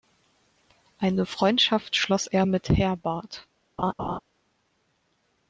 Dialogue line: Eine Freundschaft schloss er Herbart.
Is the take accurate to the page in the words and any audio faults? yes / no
no